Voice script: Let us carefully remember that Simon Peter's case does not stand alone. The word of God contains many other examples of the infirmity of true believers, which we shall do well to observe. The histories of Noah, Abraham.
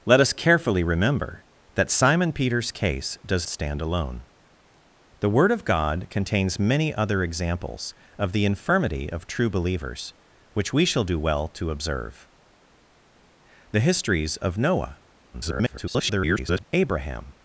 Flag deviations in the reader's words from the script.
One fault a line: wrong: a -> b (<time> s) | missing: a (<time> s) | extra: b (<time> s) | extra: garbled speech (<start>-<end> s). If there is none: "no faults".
missing: not (3.5 s)
extra: garbled speech (15.3-16.6 s)